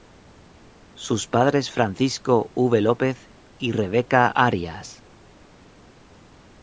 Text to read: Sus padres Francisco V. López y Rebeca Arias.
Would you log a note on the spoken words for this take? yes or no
no